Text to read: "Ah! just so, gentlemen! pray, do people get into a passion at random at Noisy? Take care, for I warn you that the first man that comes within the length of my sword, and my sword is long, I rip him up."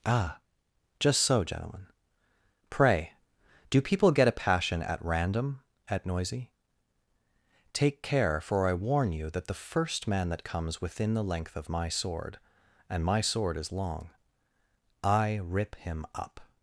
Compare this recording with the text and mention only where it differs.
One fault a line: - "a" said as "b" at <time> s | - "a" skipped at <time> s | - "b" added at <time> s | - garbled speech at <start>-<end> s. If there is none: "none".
- "into" skipped at 4.3 s